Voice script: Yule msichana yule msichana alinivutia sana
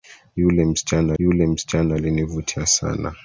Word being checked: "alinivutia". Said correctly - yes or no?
yes